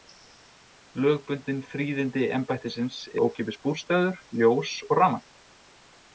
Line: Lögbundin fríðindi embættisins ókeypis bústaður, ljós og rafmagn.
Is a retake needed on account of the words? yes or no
no